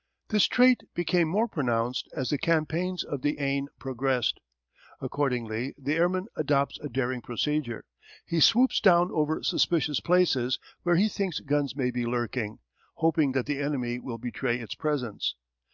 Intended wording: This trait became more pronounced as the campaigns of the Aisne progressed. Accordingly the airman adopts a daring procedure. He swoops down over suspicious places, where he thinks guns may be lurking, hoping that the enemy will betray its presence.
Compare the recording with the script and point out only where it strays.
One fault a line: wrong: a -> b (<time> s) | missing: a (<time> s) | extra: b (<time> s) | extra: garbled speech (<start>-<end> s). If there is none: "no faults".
no faults